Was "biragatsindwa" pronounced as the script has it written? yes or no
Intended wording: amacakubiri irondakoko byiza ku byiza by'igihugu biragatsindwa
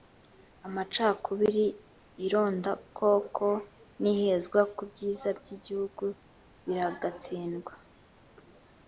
yes